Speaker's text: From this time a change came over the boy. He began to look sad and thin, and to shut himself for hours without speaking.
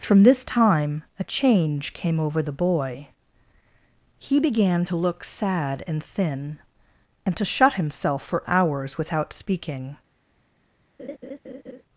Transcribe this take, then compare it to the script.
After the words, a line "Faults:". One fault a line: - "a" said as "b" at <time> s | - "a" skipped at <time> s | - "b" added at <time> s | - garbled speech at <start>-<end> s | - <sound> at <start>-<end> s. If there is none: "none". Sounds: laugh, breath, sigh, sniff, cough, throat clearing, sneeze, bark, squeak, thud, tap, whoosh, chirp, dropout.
From this time a change came over the boy. He began to look sad and thin, and to shut himself for hours without speaking.
Faults:
- laugh at 11.0-11.8 s